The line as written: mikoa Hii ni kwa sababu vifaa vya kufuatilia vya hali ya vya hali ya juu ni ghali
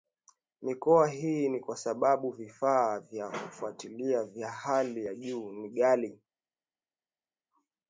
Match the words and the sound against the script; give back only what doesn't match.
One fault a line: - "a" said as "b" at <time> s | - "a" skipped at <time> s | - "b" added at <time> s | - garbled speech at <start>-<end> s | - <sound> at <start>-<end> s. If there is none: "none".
- "vya hali ya" skipped at 5.1 s